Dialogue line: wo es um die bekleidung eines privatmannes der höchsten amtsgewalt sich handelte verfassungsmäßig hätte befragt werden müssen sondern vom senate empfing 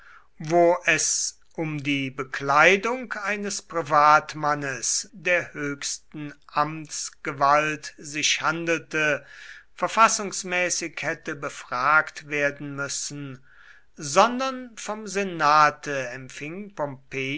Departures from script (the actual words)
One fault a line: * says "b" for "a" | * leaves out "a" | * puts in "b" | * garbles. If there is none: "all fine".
all fine